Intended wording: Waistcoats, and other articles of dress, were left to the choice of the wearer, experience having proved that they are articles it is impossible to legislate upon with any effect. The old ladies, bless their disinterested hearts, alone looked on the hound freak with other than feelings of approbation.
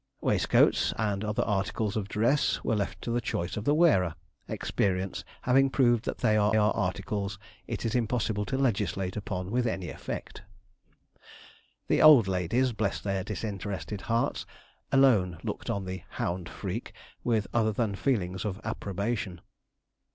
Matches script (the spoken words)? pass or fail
fail